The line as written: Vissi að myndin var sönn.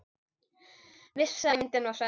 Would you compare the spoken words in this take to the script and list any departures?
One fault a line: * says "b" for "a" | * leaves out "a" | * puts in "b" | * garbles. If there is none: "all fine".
all fine